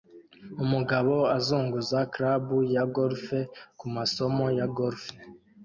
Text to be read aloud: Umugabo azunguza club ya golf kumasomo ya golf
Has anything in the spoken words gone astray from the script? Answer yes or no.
no